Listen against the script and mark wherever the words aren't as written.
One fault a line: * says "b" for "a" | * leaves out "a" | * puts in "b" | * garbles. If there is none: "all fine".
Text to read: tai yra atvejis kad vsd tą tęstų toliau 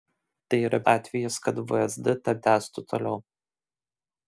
all fine